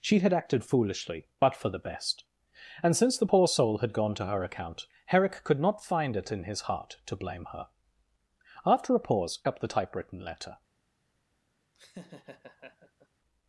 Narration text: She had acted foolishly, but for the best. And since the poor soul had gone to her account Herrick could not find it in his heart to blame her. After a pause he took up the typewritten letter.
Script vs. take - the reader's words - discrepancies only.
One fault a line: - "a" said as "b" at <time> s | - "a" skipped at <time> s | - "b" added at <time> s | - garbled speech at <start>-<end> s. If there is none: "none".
- "he took" skipped at 9.4 s